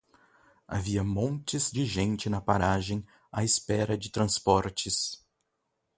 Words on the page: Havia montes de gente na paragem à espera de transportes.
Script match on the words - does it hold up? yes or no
yes